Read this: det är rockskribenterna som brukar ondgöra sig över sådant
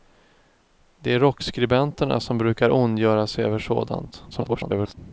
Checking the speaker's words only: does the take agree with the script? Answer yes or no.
no